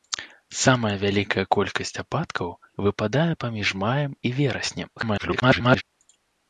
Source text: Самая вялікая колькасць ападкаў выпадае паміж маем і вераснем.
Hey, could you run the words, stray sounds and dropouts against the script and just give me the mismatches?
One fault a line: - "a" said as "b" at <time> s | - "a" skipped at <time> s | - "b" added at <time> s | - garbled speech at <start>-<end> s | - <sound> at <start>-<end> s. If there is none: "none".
- garbled speech at 5.0-5.8 s